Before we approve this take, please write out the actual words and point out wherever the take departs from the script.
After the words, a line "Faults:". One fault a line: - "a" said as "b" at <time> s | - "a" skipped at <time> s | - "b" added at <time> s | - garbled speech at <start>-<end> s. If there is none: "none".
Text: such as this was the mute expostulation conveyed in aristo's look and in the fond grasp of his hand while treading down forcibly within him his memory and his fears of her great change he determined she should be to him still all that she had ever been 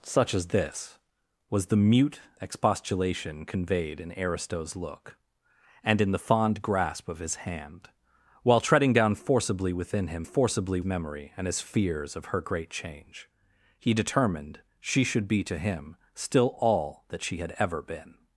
such as this was the mute expostulation conveyed in aristo's look and in the fond grasp of his hand while treading down forcibly within him forcibly memory and his fears of her great change he determined she should be to him still all that she had ever been
Faults:
- "his" said as "forcibly" at 10.2 s